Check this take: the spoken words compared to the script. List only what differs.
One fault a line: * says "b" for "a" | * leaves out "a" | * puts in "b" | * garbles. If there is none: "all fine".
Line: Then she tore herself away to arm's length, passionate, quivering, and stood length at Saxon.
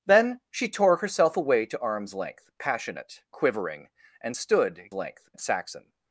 all fine